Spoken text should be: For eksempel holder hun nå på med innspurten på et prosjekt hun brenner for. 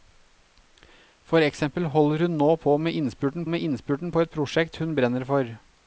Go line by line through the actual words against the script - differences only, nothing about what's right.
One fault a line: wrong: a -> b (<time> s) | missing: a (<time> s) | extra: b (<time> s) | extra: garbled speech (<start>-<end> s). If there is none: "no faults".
extra: med innspurten (3.5 s)